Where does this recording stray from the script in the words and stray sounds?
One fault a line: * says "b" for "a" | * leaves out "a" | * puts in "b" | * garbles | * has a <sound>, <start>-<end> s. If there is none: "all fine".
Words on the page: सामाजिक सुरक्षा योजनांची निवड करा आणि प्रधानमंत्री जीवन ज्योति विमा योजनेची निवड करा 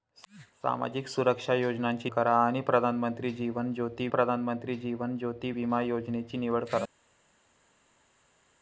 * leaves out "निवड"
* puts in "प्रधानमंत्री जीवन ज्योति"